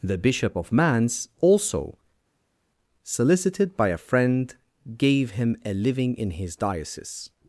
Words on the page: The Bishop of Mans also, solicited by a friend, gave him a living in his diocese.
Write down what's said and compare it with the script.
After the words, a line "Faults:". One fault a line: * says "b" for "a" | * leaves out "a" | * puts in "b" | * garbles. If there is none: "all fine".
The Bishop of Mans also, solicited by a friend, gave him a living in his diocese.
Faults:
all fine